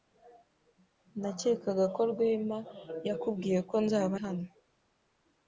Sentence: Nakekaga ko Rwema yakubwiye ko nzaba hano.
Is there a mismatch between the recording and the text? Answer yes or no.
no